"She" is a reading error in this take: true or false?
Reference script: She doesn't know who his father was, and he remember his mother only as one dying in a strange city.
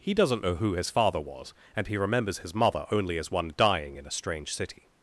true